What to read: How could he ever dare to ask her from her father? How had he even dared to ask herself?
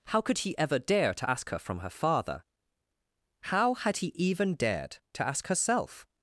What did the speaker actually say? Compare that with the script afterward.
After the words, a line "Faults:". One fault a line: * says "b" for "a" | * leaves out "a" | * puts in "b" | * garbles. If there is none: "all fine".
How could he ever dare to ask her from her father? How had he even dared to ask herself?
Faults:
all fine